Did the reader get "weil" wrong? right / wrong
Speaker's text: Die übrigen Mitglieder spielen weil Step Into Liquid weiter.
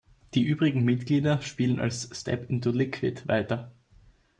wrong